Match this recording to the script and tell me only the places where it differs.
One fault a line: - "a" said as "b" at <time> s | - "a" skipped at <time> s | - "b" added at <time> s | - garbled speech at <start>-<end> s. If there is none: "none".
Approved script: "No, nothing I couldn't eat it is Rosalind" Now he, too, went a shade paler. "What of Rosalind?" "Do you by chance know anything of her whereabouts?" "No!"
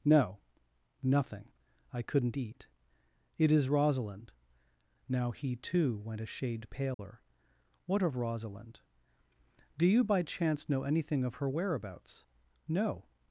none